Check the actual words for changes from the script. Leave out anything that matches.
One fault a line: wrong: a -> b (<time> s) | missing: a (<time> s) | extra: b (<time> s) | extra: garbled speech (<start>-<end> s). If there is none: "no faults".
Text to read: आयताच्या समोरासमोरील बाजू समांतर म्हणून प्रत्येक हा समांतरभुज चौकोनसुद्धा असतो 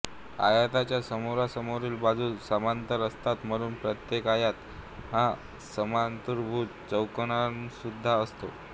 extra: असतात (3.1 s)
extra: आयत (4.3 s)